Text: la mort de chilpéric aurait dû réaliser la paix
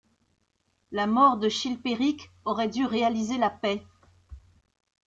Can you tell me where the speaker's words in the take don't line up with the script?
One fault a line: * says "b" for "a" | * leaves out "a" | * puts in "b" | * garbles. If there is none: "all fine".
all fine